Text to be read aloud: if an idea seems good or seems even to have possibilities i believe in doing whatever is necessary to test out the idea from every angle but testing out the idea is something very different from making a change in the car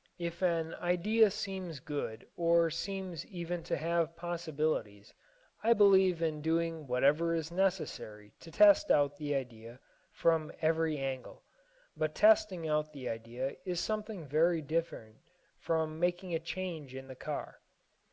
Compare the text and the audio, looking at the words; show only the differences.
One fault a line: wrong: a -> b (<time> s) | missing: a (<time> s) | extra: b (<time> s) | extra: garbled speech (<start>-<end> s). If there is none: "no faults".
no faults